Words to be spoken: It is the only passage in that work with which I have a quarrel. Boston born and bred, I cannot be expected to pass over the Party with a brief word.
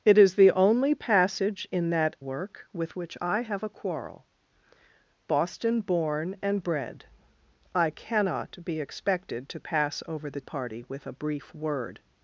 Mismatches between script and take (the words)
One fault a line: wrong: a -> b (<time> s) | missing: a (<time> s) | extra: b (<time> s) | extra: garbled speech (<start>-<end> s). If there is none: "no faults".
no faults